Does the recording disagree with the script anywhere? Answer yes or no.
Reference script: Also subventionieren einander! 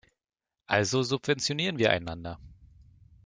yes